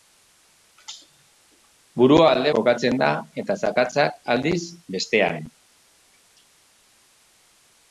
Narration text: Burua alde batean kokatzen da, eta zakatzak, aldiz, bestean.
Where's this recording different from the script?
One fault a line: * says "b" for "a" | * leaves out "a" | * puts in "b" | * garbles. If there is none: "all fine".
* leaves out "batean"